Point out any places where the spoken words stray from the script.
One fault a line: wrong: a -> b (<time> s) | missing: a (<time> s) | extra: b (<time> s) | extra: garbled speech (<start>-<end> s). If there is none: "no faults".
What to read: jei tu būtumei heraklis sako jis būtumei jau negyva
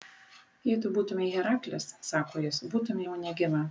no faults